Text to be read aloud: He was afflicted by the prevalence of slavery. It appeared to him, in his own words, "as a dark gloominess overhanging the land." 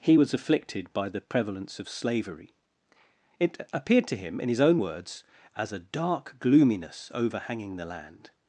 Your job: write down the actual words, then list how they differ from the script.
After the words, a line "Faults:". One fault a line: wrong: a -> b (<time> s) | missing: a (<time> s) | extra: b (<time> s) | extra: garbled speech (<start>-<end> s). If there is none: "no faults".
He was afflicted by the prevalence of slavery. It appeared to him, in his own words, "as a dark gloominess overhanging the land."
Faults:
no faults